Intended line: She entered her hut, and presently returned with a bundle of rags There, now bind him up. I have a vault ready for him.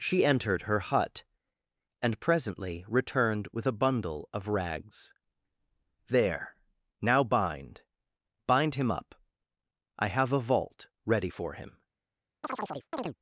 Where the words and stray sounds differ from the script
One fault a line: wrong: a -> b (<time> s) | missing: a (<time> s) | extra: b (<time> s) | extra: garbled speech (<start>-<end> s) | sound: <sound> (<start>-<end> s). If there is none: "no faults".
extra: bind (8.5 s)
sound: chirp (12.4-13.2 s)